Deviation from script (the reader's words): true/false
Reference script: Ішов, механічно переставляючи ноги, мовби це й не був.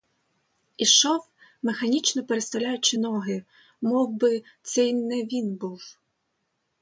true